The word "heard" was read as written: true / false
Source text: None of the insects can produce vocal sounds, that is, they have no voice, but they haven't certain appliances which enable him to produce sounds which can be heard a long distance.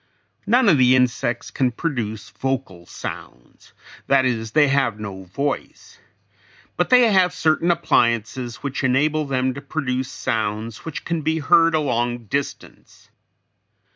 true